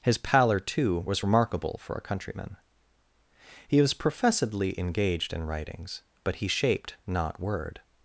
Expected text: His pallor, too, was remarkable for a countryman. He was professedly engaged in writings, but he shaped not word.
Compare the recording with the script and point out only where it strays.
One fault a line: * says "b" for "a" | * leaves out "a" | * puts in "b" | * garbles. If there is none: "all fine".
all fine